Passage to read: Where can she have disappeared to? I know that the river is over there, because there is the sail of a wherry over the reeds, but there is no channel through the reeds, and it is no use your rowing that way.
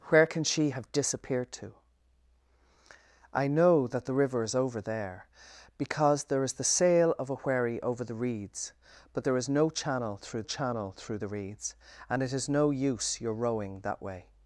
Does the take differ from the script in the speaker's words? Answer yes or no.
yes